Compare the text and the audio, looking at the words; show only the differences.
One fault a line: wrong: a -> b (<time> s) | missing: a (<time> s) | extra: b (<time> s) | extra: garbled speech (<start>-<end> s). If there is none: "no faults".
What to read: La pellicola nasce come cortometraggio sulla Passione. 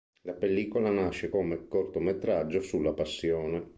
no faults